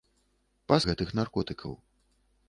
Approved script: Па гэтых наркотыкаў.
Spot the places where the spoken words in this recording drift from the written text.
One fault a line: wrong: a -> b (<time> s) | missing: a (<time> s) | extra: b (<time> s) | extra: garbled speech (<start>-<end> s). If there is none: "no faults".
no faults